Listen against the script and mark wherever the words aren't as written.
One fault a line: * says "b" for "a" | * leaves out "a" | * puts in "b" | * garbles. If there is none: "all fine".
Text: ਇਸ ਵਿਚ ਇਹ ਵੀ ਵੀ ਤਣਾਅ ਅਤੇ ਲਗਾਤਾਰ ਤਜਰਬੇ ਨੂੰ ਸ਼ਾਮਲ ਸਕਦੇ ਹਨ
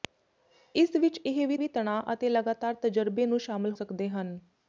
all fine